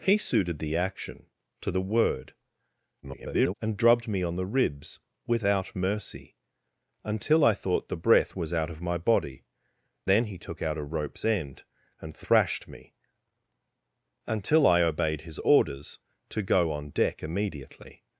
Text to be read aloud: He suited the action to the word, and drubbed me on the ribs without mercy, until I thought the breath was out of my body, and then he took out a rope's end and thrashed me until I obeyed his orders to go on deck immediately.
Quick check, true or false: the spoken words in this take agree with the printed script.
false